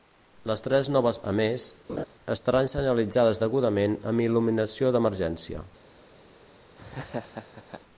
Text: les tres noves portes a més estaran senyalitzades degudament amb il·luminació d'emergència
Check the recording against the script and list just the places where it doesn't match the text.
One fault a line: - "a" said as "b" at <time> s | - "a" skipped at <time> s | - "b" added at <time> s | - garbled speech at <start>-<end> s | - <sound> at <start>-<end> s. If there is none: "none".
- "portes" skipped at 1.2 s
- laugh at 1.9-2.1 s
- laugh at 6.8-7.8 s